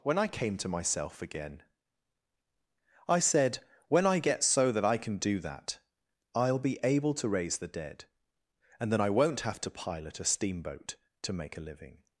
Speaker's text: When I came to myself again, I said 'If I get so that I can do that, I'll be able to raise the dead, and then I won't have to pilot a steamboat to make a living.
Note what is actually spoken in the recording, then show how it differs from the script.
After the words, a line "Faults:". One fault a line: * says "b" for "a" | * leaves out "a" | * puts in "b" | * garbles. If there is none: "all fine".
When I came to myself again, I said 'When I get so that I can do that, I'll be able to raise the dead, and then I won't have to pilot a steamboat to make a living.
Faults:
* says "When" for "If"